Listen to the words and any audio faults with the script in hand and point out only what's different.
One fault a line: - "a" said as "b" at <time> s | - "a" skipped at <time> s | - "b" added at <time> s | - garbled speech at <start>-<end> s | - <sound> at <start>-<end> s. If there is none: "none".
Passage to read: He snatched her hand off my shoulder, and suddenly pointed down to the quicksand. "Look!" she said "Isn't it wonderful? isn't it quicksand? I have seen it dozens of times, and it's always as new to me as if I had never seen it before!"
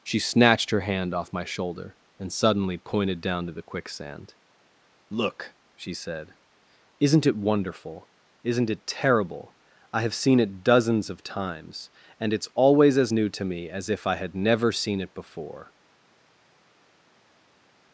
- "He" said as "She" at 0.0 s
- "quicksand" said as "terrible" at 8.9 s